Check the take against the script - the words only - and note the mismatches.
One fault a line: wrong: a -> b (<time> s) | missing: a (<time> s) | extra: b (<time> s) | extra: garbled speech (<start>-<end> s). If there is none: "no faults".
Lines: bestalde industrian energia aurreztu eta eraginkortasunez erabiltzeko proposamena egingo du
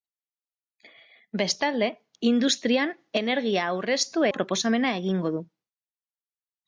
missing: eta eraginkortasunez erabiltzeko (4.2 s)